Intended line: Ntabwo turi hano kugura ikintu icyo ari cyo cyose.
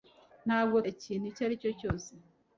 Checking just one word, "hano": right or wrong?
wrong